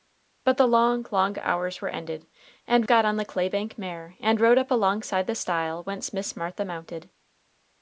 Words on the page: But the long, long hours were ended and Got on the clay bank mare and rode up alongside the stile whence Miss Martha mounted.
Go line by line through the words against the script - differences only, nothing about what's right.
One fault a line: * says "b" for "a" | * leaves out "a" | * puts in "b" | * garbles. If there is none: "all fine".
all fine